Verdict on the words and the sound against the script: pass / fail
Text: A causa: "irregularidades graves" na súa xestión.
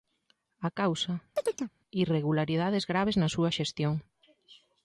fail